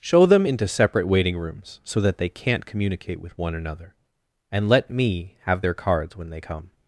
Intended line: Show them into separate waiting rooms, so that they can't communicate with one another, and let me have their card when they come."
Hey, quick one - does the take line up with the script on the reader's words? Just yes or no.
no